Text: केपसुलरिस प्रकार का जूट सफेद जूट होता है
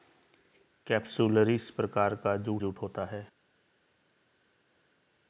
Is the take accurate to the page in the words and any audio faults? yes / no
no